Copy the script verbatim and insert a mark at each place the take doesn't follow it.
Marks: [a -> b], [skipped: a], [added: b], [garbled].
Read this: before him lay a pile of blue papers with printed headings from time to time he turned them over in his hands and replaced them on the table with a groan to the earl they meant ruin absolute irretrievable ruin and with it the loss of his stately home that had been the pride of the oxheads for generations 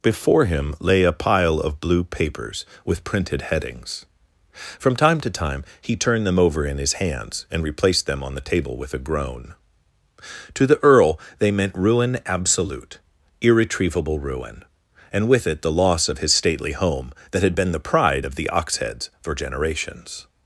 before him lay a pile of blue papers with printed headings from time to time he turned them over in his hands and replaced them on the table with a groan to the earl they meant ruin absolute irretrievable ruin and with it the loss of his stately home that had been the pride of the oxheads for generations